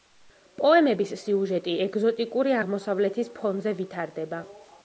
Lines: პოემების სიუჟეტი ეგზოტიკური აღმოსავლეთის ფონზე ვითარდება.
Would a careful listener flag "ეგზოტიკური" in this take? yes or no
no